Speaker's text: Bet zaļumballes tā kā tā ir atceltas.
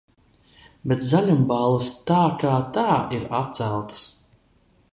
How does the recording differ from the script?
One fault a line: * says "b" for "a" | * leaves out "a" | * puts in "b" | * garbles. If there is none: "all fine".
all fine